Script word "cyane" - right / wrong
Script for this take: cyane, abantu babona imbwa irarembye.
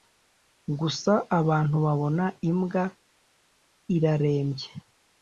wrong